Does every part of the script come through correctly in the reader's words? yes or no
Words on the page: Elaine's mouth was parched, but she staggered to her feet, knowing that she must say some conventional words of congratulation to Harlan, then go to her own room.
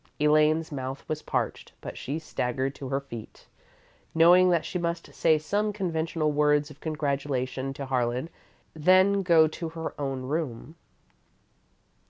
yes